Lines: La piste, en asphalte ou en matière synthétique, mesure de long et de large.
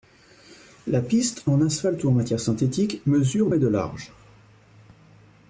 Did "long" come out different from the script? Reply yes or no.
yes